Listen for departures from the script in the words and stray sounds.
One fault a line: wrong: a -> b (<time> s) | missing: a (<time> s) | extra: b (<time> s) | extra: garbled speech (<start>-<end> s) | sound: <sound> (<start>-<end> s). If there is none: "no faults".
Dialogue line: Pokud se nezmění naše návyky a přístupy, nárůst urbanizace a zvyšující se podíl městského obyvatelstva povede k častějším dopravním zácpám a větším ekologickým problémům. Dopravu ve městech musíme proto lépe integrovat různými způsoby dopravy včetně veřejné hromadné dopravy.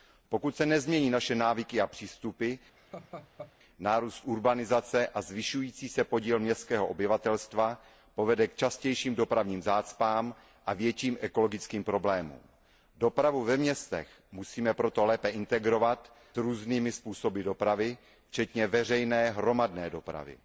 sound: laugh (2.8-3.5 s)